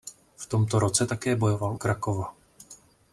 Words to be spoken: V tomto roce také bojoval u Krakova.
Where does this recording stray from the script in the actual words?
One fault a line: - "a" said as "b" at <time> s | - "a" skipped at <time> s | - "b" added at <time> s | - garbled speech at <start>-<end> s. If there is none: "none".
- "u" skipped at 1.8 s